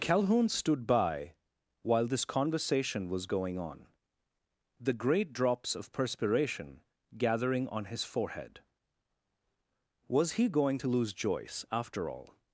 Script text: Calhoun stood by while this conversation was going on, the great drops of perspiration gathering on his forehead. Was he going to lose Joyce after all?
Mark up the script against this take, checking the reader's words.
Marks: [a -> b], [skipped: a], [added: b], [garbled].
Calhoun stood by while this conversation was going on, the great drops of perspiration gathering on his forehead. Was he going to lose Joyce after all?